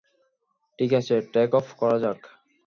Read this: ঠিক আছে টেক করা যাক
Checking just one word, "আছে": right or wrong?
right